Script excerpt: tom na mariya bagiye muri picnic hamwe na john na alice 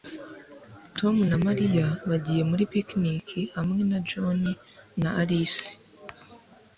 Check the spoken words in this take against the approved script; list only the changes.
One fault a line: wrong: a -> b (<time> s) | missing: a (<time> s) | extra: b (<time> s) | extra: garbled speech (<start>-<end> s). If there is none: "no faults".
no faults